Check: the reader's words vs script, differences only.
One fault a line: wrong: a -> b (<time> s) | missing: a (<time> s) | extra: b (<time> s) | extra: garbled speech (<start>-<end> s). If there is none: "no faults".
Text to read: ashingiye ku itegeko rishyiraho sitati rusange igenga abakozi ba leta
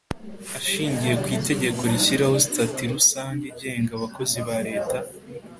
no faults